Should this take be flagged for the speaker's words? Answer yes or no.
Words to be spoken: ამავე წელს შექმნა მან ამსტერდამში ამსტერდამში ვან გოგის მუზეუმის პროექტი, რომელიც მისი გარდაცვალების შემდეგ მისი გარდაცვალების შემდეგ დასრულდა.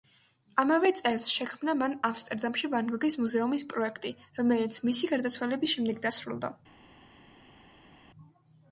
yes